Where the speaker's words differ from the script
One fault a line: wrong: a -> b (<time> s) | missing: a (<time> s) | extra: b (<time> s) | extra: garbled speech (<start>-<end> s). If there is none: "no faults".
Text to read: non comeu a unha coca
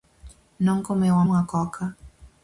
no faults